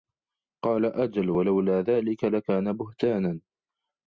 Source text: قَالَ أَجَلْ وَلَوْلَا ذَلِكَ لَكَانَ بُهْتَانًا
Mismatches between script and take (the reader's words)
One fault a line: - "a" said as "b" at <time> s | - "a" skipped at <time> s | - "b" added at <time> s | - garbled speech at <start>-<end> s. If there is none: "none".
none